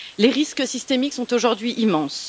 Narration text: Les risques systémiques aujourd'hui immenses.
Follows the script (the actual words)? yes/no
no